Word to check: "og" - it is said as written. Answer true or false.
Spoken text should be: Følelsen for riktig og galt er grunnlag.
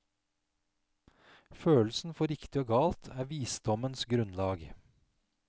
true